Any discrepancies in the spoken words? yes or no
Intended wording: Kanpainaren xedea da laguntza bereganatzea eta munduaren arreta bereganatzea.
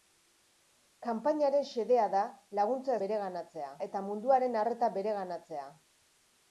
no